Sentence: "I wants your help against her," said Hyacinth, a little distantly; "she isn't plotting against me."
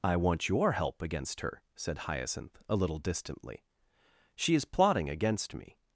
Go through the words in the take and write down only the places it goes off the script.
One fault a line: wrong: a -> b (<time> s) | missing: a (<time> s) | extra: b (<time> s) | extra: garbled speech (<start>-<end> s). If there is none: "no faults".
wrong: wants -> want (0.1 s)
wrong: isn't -> is (4.5 s)